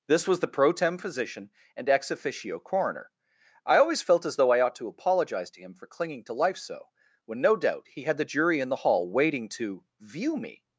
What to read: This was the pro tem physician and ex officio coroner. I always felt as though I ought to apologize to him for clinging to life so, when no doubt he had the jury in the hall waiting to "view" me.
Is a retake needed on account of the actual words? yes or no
no